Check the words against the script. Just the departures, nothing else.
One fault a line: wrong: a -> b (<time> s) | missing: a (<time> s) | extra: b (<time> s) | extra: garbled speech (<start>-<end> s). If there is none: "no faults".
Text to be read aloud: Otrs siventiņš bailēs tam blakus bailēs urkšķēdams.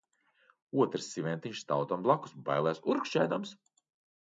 wrong: bailēs -> stāv (1.6 s)